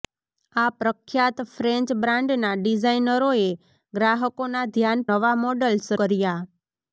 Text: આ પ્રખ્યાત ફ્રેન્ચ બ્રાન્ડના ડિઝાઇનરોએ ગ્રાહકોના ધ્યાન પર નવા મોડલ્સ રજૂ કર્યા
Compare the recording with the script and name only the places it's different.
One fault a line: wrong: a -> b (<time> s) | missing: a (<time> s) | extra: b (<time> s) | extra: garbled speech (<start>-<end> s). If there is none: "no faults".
missing: પર (5.0 s)
missing: રજૂ (5.9 s)